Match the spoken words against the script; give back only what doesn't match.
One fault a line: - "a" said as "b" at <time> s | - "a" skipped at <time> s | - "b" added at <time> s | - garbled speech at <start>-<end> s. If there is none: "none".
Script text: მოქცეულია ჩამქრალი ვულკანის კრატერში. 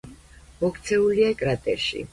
- "ჩამქრალი ვულკანის" skipped at 1.3 s